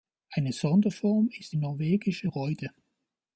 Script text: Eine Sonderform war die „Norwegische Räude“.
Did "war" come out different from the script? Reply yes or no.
yes